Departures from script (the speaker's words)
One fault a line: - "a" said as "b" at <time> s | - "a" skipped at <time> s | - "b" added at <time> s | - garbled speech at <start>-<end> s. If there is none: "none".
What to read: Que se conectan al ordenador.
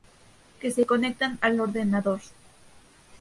none